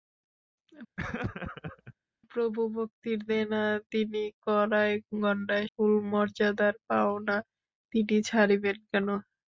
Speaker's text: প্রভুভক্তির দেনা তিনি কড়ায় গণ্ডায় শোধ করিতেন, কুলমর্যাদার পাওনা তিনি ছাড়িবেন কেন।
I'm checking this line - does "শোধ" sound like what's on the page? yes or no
no